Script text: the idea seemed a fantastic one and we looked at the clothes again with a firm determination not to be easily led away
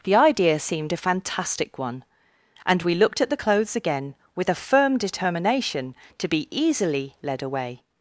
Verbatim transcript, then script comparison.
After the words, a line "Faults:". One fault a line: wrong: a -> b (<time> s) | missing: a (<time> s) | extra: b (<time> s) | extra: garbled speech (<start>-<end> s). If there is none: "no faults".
the idea seemed a fantastic one and we looked at the clothes again with a firm determination to be easily led away
Faults:
missing: not (5.9 s)